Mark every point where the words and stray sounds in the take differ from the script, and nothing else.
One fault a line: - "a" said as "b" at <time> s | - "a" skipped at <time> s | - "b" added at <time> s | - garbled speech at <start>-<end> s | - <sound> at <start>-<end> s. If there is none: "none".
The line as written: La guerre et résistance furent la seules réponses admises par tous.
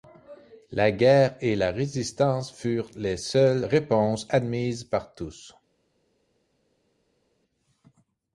- "la" added at 1.6 s
- "la" said as "les" at 3.0 s